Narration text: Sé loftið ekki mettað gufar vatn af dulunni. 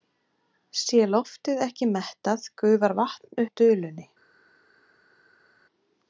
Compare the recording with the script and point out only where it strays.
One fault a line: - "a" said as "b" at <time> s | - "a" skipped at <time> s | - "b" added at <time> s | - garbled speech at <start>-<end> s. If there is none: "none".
none